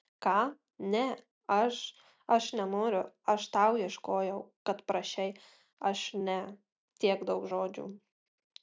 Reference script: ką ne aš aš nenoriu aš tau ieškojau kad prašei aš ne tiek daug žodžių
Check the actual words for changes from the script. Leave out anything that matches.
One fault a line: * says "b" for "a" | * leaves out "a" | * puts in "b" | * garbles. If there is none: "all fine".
all fine